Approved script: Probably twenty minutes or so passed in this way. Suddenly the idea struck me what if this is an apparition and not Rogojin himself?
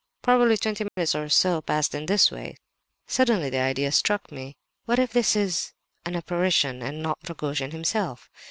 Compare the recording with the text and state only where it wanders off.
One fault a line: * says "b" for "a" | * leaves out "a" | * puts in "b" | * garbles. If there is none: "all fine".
all fine